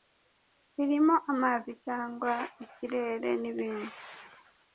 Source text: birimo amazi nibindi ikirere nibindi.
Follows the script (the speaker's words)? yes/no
no